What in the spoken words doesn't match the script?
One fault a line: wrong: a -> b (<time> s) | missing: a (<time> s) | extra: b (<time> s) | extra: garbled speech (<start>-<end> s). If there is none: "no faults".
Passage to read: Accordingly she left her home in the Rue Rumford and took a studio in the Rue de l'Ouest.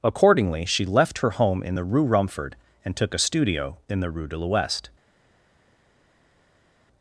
no faults